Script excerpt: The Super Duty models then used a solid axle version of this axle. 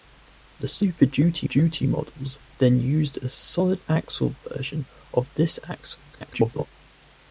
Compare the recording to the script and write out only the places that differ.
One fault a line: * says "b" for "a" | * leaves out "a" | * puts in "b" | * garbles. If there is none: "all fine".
* puts in "Duty"
* garbles